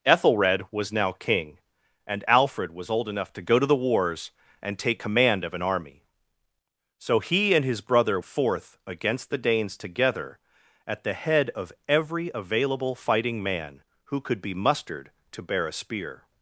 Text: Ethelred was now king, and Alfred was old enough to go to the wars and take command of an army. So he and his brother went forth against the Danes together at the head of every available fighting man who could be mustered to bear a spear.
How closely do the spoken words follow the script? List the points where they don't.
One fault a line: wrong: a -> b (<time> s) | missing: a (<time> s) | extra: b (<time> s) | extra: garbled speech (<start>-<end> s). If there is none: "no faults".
missing: went (8.2 s)